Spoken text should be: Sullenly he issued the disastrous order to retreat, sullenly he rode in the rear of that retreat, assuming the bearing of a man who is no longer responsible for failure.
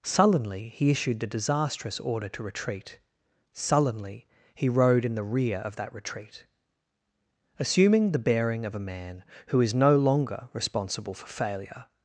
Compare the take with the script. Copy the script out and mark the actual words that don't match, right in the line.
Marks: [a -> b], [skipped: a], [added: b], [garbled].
Sullenly he issued the disastrous order to retreat, sullenly he rode in the rear of that retreat, assuming the bearing of a man who is no longer responsible for failure.